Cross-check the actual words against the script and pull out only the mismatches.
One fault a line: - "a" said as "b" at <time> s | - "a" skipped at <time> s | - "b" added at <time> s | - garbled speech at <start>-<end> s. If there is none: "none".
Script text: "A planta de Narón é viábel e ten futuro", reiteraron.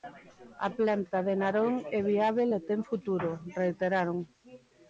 none